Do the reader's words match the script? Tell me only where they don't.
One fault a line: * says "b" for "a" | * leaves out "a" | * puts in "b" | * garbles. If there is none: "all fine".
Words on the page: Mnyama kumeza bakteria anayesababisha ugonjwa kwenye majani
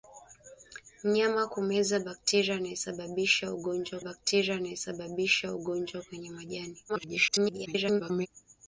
* puts in "bakteria anayesababisha ugonjwa"
* garbles